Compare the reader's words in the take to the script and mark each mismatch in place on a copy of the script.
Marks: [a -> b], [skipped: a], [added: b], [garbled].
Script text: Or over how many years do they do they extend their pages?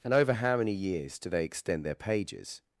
[Or -> And] over how many years do they [skipped: do they] extend their pages?